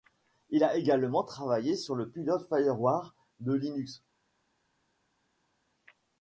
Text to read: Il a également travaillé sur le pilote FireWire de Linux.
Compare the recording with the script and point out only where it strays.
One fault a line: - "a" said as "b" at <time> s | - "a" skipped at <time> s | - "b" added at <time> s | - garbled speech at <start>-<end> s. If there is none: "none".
none